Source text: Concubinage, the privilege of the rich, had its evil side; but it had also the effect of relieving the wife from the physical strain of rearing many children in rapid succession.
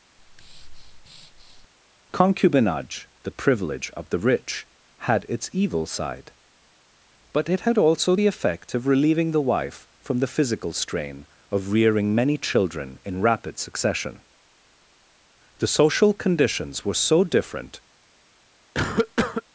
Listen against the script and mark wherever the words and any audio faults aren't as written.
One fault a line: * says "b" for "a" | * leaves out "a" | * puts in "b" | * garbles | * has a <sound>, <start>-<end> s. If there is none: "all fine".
* has a breath, 0.2-1.7 s
* puts in "The social conditions were so different"
* has a cough, 18.7-19.4 s